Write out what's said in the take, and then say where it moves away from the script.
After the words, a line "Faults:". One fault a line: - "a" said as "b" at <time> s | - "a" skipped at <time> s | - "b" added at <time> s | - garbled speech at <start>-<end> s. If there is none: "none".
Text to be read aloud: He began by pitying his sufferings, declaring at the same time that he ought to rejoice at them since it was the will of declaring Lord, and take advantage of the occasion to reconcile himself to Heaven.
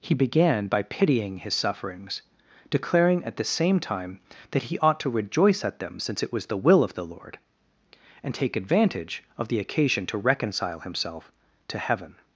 He began by pitying his sufferings, declaring at the same time that he ought to rejoice at them since it was the will of the Lord, and take advantage of the occasion to reconcile himself to Heaven.
Faults:
- "declaring" said as "the" at 6.9 s